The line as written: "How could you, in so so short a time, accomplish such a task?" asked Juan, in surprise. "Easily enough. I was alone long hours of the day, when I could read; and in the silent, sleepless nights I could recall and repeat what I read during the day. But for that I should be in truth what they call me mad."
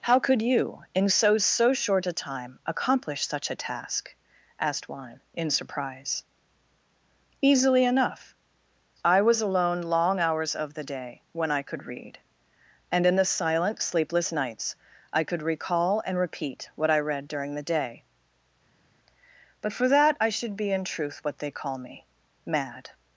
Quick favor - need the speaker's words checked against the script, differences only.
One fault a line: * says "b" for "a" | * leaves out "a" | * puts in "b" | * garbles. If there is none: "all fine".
all fine